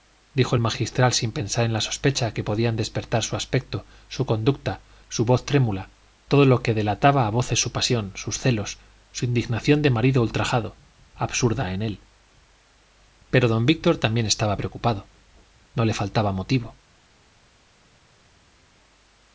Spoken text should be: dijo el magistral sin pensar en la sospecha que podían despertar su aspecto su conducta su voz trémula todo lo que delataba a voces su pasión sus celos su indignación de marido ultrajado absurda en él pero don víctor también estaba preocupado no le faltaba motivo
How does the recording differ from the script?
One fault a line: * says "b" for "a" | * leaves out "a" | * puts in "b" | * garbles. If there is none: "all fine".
all fine